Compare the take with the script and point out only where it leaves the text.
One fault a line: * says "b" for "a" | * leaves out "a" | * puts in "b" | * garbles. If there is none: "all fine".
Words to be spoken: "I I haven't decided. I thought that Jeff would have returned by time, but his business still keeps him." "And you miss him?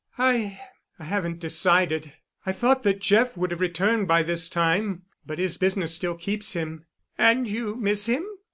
* puts in "this"